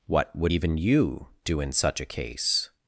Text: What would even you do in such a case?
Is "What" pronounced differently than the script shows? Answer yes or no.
no